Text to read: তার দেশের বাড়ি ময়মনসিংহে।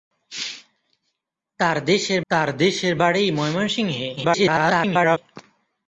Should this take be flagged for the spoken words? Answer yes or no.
yes